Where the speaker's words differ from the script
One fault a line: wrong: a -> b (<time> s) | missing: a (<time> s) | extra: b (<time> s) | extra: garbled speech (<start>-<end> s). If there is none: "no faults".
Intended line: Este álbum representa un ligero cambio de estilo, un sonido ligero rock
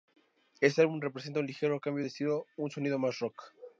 wrong: ligero -> más (3.0 s)